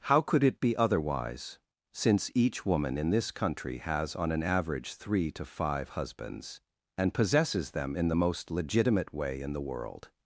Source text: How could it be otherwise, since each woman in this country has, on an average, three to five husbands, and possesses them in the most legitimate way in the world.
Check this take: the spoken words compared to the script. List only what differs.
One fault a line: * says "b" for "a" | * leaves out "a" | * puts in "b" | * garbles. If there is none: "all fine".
all fine